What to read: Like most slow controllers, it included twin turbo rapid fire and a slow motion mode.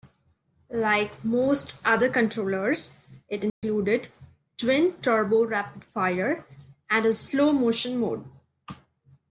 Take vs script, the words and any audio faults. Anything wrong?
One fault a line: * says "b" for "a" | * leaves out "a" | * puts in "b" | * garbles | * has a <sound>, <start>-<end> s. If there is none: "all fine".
* says "other" for "slow"
* has a dropout, 3.5-3.6 s